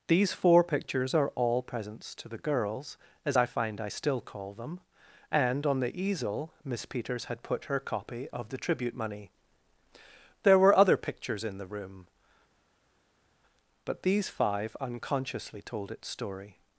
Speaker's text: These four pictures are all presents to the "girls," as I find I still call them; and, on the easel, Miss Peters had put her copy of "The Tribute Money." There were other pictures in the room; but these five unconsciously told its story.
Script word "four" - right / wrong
right